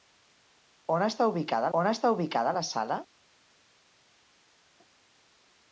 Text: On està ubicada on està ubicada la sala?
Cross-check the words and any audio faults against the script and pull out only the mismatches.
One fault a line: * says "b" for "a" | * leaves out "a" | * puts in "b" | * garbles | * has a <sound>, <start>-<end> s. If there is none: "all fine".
all fine